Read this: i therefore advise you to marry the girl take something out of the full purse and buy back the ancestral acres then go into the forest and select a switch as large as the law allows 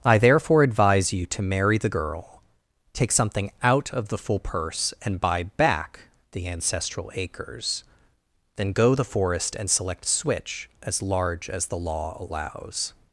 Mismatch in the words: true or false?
true